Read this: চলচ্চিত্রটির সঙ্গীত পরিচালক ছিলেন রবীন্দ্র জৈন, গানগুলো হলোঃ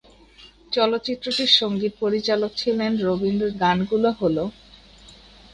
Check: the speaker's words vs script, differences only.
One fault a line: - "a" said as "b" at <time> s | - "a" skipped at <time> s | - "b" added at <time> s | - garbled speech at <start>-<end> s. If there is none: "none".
- "জৈন" skipped at 3.5 s